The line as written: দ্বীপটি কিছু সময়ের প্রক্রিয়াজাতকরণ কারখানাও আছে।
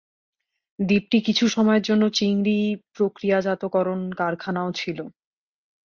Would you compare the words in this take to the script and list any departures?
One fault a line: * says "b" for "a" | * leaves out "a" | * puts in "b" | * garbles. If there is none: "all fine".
* puts in "জন্য চিংড়ি"
* says "ছিল" for "আছে"